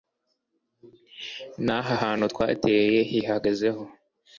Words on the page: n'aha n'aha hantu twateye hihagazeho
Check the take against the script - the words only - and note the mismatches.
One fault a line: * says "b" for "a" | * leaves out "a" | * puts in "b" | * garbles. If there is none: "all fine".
* leaves out "n'aha"